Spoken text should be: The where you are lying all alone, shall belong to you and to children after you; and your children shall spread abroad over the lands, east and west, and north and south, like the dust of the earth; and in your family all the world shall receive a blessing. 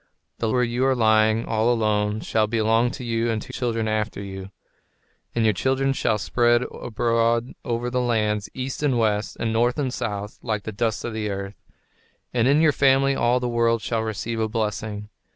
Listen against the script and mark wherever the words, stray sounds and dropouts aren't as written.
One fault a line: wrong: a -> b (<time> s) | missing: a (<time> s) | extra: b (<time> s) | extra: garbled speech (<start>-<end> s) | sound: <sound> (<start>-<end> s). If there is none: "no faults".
no faults